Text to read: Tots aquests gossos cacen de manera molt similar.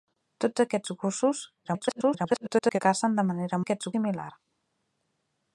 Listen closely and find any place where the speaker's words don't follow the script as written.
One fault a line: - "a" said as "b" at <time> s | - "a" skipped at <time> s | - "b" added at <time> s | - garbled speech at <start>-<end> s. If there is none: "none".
- garbled speech at 1.6-2.8 s
- "molt" said as "aquests" at 3.6 s